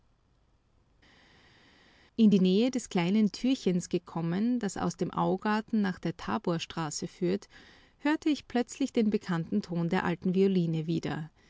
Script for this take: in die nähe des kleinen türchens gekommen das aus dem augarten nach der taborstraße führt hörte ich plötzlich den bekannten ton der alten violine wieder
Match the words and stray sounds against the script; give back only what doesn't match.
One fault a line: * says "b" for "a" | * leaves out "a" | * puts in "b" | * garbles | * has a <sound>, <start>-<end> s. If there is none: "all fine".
all fine